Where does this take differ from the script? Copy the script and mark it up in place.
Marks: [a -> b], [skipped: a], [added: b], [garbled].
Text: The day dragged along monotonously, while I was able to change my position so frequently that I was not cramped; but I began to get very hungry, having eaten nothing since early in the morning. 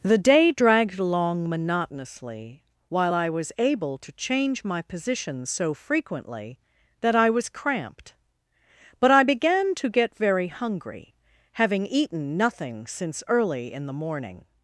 The day dragged along monotonously, while I was able to change my position so frequently that I was [skipped: not] cramped; but I began to get very hungry, having eaten nothing since early in the morning.